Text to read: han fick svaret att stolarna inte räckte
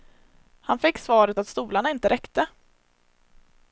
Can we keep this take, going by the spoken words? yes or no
yes